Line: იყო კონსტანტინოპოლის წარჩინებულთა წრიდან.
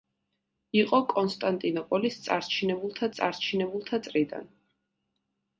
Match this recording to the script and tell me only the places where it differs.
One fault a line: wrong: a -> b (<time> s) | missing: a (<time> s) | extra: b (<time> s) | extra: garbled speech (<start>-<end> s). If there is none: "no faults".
extra: წარჩინებულთა (3.2 s)